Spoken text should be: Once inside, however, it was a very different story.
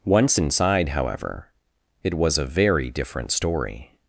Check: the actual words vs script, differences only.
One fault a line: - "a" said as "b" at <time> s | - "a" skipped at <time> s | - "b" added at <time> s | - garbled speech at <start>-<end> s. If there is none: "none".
none